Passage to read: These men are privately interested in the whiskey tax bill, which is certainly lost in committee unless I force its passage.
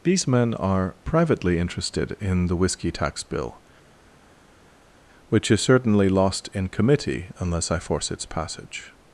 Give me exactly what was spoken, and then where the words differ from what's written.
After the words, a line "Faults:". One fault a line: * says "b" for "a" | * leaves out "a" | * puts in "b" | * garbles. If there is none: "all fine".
These men are privately interested in the whiskey tax bill, which is certainly lost in committee unless I force its passage.
Faults:
all fine